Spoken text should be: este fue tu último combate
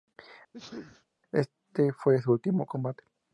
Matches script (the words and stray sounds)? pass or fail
fail